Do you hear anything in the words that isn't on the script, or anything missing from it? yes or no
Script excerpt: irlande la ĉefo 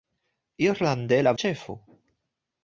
no